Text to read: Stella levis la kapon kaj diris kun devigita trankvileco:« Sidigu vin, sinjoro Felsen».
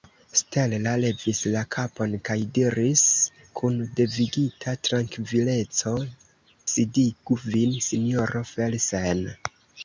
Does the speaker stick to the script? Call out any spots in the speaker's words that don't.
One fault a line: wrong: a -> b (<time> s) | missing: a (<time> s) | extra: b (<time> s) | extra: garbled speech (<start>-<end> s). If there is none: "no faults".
no faults